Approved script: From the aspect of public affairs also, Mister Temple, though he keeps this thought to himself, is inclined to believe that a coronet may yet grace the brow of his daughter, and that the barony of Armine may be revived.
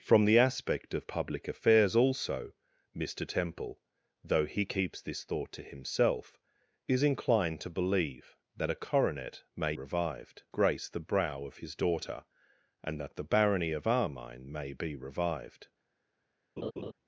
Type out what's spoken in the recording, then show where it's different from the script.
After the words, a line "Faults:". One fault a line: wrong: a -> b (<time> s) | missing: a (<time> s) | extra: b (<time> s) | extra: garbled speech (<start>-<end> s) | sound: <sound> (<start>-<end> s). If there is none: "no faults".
From the aspect of public affairs also, Mister Temple, though he keeps this thought to himself, is inclined to believe that a coronet may revived grace the brow of his daughter, and that the barony of Armine may be revived.
Faults:
wrong: yet -> revived (9.7 s)
sound: laugh (16.6-16.9 s)